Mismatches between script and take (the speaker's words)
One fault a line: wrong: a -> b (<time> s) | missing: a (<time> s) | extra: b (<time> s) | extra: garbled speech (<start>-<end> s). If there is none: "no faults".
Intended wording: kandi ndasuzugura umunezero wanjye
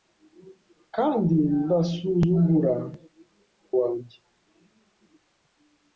missing: umunezero (2.8 s)